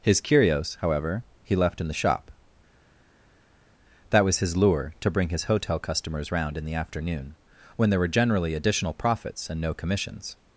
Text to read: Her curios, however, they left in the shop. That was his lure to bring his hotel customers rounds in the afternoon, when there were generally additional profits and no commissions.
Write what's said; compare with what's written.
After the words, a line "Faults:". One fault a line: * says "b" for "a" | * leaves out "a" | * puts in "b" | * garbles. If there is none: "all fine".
His curios, however, he left in the shop. That was his lure to bring his hotel customers round in the afternoon, when there were generally additional profits and no commissions.
Faults:
* says "His" for "Her"
* says "he" for "they"
* says "round" for "rounds"